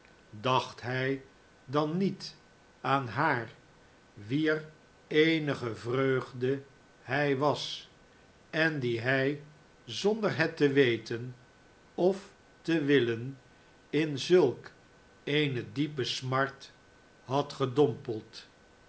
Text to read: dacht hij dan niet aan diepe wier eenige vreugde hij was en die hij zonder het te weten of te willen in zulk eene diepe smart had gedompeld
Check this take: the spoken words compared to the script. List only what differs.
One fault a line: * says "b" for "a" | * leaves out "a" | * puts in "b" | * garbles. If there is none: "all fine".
* says "haar" for "diepe"